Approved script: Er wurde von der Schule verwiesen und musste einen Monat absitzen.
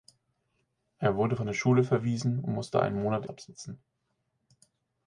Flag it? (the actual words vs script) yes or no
no